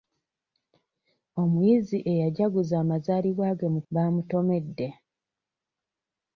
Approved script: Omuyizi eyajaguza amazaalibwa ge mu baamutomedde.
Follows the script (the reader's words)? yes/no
yes